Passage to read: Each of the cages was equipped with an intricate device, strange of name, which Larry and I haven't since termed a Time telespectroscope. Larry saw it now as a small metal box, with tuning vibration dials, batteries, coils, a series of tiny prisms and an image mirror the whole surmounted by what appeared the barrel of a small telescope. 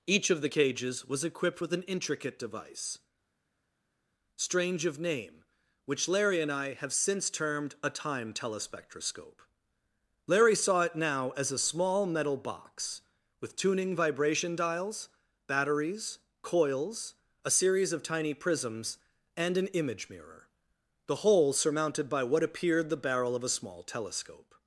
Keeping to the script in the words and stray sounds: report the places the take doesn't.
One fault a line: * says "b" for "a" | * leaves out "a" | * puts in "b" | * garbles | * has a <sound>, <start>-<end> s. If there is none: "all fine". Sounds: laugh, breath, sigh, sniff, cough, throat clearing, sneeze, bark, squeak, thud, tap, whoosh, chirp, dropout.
* says "have" for "haven't"